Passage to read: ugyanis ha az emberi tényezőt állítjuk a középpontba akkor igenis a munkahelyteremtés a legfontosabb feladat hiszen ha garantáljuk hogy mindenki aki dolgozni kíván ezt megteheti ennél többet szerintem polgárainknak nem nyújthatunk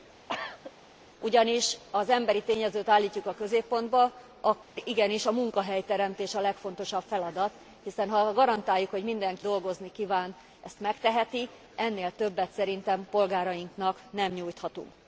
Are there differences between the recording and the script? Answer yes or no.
yes